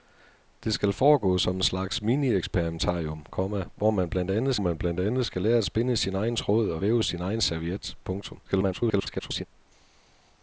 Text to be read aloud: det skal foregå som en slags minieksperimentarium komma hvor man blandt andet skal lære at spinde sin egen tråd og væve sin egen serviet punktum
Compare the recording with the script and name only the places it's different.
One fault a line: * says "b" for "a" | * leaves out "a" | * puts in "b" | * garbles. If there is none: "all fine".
* puts in "man blandt andet"
* garbles